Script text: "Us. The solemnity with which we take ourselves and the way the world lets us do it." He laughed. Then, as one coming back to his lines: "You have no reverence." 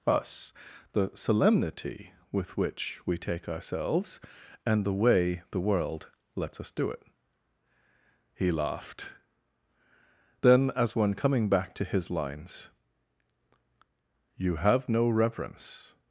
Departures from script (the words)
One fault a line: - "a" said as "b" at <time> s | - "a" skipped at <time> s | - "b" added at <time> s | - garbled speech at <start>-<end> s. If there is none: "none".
none